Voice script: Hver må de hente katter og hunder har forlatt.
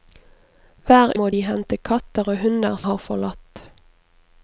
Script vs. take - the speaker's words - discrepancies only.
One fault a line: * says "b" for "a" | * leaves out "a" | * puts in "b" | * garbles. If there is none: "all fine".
all fine